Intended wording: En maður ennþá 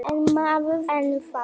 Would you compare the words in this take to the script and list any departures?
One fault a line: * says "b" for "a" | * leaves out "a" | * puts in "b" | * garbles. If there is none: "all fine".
all fine